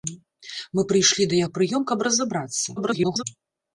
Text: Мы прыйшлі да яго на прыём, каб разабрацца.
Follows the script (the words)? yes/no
no